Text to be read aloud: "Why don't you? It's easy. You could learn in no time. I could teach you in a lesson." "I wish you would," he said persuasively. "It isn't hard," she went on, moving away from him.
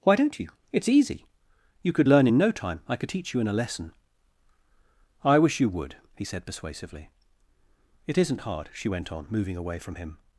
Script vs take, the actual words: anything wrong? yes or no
no